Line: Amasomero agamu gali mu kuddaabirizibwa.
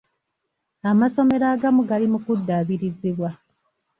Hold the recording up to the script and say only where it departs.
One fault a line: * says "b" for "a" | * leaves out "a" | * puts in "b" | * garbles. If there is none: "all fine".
all fine